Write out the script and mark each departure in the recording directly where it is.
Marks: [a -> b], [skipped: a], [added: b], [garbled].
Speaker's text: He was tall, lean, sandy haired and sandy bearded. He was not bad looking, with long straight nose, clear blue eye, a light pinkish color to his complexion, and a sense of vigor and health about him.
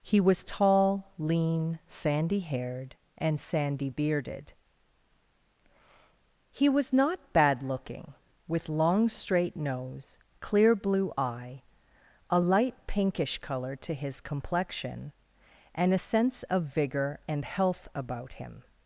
He was tall, lean, sandy haired and sandy bearded. He was not bad looking, with long straight nose, clear blue eye, a light pinkish color to his complexion, and a sense of vigor and health about him.